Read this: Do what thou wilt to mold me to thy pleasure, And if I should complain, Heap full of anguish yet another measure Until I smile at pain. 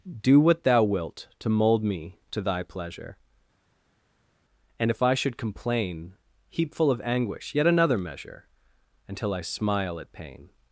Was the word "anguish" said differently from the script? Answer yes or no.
no